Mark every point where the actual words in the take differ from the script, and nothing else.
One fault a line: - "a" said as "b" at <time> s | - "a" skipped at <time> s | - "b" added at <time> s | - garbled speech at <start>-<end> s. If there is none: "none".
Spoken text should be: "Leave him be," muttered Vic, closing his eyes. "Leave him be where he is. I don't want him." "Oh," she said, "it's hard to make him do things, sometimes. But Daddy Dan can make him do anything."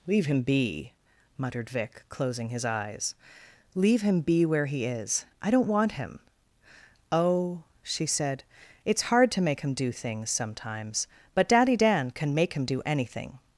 none